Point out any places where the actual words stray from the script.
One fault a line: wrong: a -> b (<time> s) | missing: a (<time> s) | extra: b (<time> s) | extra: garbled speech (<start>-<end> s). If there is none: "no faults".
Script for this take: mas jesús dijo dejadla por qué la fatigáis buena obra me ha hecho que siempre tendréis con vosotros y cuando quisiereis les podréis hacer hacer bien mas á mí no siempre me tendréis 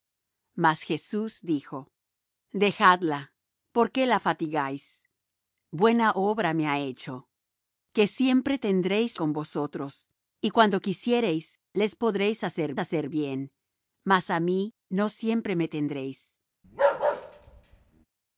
no faults